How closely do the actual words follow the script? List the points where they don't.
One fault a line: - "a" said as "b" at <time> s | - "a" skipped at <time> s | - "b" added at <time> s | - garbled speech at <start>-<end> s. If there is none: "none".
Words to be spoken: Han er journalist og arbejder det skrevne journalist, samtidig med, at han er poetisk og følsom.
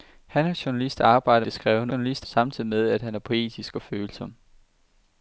none